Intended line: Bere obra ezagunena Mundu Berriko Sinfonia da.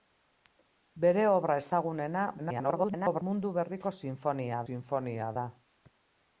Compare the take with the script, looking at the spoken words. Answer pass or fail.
fail